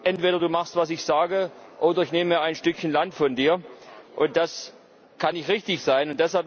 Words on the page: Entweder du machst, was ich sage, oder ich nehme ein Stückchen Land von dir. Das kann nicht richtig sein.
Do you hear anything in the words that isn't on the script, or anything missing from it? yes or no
no